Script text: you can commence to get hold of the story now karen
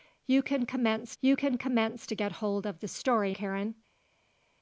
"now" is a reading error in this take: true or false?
true